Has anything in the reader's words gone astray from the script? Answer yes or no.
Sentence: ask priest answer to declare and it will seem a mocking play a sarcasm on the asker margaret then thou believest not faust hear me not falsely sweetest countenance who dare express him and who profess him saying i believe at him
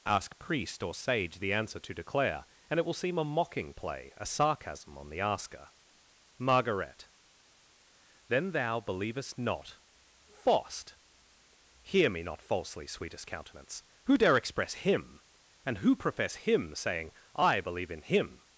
yes